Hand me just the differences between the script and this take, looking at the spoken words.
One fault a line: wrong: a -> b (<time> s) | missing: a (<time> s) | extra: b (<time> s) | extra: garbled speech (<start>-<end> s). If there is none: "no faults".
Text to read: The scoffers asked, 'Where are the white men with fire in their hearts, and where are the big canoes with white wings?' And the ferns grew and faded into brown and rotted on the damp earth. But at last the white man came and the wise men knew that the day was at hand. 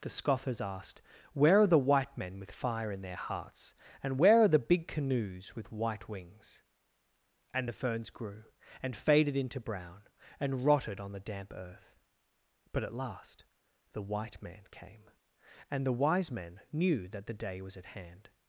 no faults